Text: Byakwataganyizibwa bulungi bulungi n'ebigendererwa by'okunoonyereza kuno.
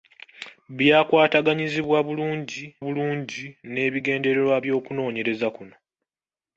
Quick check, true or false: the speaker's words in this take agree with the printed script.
true